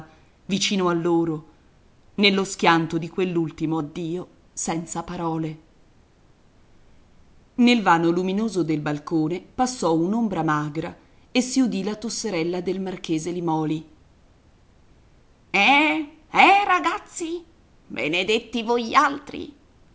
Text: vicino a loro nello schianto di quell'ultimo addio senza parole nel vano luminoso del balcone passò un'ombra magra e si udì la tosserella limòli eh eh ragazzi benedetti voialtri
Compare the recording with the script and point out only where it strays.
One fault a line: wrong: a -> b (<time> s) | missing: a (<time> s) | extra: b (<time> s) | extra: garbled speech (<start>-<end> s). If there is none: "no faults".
extra: del marchese (12.6 s)